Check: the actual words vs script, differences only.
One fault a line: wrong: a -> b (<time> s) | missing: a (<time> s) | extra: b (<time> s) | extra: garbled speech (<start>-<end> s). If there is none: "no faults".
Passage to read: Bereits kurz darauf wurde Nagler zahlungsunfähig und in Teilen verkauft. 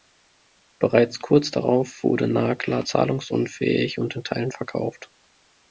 no faults